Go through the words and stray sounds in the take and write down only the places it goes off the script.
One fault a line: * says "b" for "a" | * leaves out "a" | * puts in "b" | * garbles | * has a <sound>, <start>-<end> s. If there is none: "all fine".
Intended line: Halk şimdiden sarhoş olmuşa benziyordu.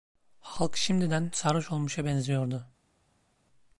all fine